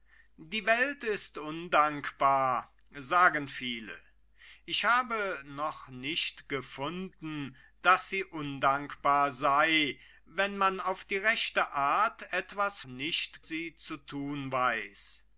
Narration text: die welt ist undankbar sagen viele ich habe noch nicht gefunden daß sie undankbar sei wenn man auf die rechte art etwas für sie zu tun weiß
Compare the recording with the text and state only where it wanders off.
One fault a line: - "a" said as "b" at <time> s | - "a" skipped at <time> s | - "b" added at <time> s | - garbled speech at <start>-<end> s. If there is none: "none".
- "für" said as "nicht" at 12.9 s